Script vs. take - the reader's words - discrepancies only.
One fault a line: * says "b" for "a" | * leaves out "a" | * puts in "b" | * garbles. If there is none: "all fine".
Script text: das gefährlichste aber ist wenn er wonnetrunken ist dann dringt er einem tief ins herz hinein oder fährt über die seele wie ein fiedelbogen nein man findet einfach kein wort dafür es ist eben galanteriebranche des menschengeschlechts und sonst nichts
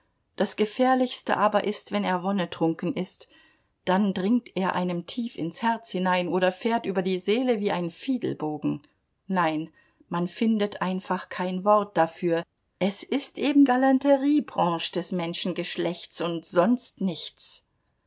all fine